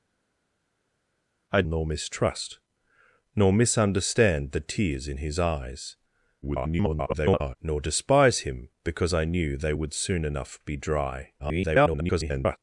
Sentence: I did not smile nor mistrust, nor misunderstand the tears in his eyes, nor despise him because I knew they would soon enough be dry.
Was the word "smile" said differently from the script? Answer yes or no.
yes